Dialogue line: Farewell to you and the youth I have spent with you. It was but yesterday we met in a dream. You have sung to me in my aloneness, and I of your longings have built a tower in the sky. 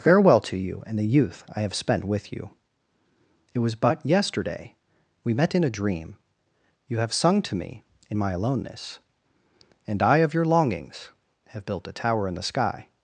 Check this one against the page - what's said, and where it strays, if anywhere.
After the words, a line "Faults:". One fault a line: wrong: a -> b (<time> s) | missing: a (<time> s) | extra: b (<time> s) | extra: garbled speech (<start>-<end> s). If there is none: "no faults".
Farewell to you and the youth I have spent with you. It was but yesterday we met in a dream. You have sung to me in my aloneness, and I of your longings have built a tower in the sky.
Faults:
no faults